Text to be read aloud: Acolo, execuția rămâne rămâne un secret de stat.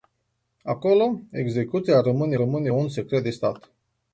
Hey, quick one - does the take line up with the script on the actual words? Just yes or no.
yes